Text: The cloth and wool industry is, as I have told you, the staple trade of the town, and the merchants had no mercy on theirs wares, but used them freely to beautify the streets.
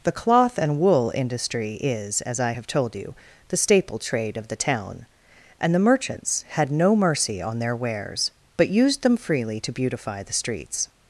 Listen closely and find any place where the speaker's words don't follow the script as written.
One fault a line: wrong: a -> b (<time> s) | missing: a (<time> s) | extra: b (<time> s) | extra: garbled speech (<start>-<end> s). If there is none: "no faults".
wrong: theirs -> their (7.6 s)